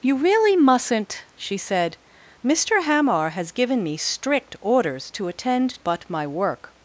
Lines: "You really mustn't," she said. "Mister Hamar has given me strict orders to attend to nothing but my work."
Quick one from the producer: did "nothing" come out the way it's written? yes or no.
no